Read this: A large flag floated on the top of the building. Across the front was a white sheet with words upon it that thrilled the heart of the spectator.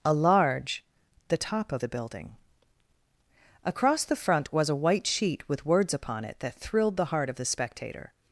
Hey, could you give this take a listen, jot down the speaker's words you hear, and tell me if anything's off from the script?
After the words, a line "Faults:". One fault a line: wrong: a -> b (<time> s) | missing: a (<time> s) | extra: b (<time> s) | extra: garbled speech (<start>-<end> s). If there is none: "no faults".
A large the top of the building. Across the front was a white sheet with words upon it that thrilled the heart of the spectator.
Faults:
missing: flag floated on (0.8 s)